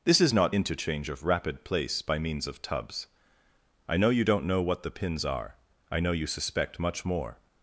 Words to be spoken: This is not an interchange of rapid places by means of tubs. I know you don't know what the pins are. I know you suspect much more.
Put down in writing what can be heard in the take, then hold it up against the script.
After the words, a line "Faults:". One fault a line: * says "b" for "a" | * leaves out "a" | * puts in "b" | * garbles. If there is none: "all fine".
This is not interchange of rapid place by means of tubs. I know you don't know what the pins are. I know you suspect much more.
Faults:
* leaves out "an"
* says "place" for "places"